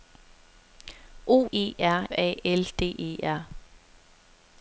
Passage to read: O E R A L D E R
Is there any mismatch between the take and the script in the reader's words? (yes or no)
no